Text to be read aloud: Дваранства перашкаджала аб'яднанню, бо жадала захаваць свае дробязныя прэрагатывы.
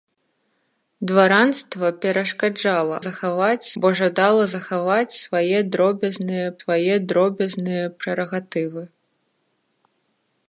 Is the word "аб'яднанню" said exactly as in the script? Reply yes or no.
no